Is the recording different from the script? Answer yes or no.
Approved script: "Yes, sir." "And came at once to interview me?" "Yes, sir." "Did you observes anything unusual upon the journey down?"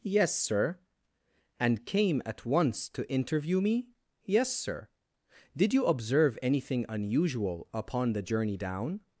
yes